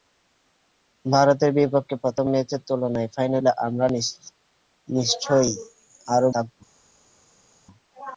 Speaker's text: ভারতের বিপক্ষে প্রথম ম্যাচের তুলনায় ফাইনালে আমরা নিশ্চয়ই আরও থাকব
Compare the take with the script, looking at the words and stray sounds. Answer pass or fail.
pass